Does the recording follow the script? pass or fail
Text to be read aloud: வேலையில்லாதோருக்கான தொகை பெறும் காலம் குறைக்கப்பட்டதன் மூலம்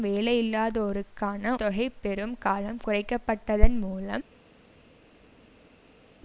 pass